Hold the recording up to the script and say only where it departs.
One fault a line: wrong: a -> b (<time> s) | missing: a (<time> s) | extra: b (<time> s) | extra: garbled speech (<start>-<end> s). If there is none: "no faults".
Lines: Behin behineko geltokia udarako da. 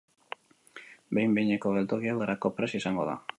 extra: prest izango (2.6 s)